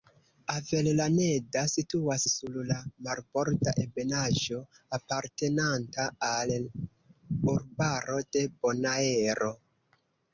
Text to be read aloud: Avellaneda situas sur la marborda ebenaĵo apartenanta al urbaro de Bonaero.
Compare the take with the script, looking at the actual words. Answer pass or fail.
pass